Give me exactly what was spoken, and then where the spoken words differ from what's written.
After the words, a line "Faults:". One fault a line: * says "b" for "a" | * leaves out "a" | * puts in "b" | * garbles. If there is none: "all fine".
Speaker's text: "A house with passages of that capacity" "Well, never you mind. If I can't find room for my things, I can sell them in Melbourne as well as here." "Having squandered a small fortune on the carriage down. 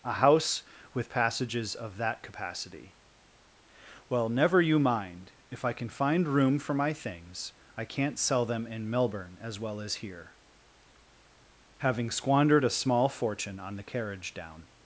"A house with passages of that capacity" "Well, never you mind. If I can find room for my things, I can't sell them in Melbourne as well as here." "Having squandered a small fortune on the carriage down.
Faults:
* says "can" for "can't"
* says "can't" for "can"